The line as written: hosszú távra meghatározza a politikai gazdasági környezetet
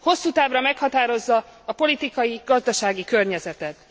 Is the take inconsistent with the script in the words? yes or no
no